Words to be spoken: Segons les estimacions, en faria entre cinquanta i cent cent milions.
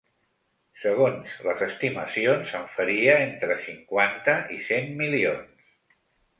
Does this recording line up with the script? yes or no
no